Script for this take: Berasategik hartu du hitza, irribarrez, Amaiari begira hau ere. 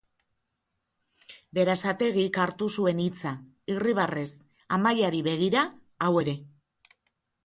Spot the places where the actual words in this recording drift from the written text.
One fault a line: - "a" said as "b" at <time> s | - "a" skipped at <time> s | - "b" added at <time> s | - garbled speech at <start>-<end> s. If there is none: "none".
- "du" said as "zuen" at 2.8 s